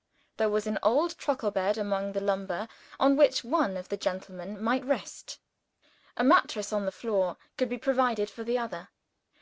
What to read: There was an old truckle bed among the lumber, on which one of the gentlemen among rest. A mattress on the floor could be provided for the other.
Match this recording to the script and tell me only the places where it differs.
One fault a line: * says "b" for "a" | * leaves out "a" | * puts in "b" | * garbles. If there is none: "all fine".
* says "might" for "among"